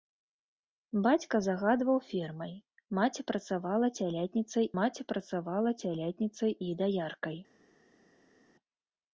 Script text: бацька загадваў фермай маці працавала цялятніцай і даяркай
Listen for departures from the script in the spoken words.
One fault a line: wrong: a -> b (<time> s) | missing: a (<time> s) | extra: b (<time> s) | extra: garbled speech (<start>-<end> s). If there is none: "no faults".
extra: маці працавала цялятніцай (4.8 s)